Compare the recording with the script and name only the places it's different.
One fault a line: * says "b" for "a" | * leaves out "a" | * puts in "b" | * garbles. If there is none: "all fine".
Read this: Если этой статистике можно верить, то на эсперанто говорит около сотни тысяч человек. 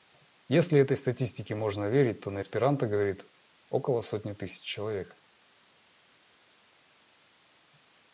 all fine